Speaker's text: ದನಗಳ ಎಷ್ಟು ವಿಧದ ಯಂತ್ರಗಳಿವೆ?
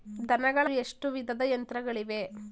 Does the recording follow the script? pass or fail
pass